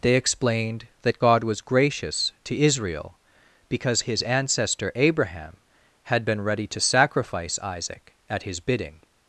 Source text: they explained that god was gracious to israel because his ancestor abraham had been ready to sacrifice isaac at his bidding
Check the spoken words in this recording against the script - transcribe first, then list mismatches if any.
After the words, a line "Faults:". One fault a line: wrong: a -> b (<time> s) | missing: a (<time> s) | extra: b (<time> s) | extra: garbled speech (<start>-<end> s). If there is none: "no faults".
they explained that god was gracious to israel because his ancestor abraham had been ready to sacrifice isaac at his bidding
Faults:
no faults